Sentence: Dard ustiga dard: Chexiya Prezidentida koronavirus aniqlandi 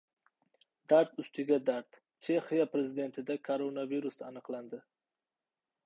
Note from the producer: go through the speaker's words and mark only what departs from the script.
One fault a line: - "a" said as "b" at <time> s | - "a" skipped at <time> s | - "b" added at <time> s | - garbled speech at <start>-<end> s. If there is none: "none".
none